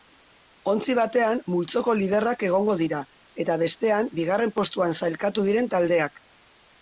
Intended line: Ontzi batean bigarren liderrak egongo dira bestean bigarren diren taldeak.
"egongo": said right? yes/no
yes